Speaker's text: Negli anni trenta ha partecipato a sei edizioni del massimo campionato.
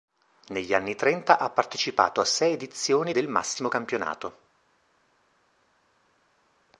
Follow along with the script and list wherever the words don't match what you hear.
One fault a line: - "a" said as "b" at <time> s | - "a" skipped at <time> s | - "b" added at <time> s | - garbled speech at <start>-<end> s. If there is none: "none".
none